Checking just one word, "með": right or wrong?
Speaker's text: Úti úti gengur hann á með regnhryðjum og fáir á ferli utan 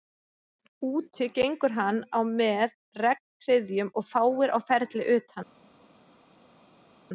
right